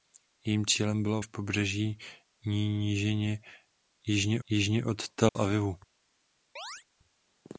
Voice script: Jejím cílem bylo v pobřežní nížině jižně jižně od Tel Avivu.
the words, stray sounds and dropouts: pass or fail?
fail